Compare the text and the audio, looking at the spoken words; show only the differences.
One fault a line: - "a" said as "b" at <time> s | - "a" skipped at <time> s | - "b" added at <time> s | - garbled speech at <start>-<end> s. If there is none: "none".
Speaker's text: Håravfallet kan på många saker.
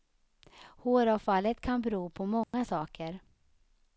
- "bero" added at 1.8 s